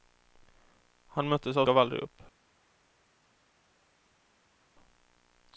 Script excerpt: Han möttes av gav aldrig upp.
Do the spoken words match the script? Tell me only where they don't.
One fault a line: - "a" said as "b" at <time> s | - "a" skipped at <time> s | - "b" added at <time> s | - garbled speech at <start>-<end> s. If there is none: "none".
none